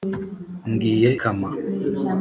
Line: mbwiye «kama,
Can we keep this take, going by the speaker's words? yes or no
yes